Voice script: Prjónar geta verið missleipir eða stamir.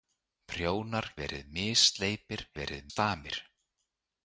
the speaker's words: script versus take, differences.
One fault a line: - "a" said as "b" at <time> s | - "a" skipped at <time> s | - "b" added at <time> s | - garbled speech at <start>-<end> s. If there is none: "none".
- "geta" skipped at 1.1 s
- "eða" said as "verið" at 2.6 s